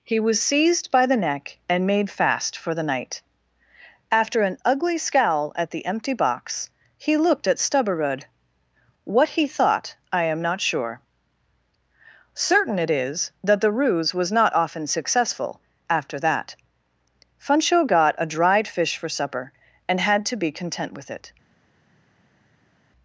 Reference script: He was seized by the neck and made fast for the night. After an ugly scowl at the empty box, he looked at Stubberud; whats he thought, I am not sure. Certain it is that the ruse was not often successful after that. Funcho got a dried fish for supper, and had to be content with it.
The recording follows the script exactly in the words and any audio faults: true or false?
false